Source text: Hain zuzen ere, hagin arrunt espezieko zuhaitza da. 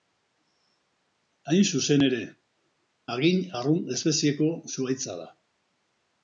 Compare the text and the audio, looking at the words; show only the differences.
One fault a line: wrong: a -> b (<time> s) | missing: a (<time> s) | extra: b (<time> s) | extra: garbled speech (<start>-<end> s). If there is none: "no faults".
no faults